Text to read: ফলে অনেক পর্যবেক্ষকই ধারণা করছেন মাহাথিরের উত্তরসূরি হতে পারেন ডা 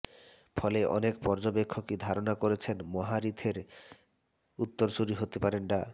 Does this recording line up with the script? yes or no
yes